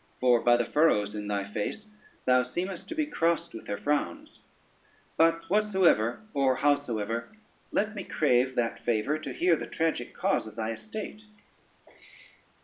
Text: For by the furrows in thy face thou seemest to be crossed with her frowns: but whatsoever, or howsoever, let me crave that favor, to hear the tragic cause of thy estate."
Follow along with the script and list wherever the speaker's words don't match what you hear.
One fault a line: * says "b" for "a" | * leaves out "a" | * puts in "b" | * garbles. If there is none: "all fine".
all fine